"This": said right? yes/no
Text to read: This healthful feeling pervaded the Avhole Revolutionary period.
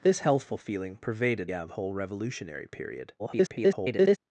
yes